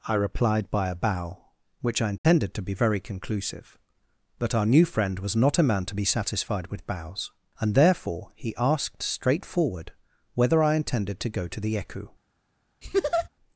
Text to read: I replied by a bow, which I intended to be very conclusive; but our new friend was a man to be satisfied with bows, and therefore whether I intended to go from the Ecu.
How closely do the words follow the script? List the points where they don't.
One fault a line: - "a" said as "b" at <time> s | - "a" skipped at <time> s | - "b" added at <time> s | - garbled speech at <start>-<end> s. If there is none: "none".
- "not" added at 5.3 s
- "he asked straightforward" added at 8.3 s
- "from" said as "to" at 11.5 s